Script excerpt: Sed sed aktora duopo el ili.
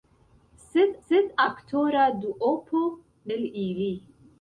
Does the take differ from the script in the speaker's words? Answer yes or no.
no